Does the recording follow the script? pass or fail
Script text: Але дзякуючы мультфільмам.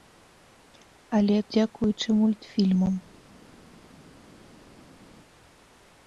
pass